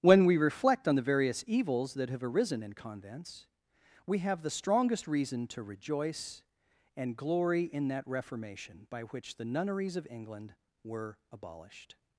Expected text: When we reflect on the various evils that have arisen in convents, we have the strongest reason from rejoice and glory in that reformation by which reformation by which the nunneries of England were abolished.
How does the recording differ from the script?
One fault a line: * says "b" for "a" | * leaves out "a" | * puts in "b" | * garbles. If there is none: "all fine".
* says "to" for "from"
* leaves out "reformation by which"